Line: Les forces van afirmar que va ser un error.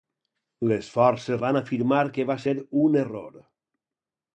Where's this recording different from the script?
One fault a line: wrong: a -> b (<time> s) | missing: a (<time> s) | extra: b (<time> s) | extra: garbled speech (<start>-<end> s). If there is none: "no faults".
no faults